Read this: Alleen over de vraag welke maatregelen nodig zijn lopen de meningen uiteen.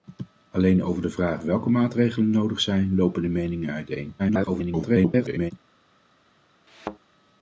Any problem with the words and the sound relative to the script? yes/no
yes